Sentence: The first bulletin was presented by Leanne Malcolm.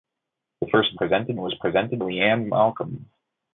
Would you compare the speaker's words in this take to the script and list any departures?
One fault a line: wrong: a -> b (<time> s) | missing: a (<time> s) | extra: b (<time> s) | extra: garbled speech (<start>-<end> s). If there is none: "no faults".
wrong: bulletin -> presented (1.0 s)
missing: by (2.0 s)